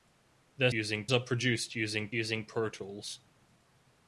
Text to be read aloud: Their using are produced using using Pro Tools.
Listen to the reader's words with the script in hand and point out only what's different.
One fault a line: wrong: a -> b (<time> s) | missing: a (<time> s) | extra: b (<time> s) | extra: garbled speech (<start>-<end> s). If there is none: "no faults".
no faults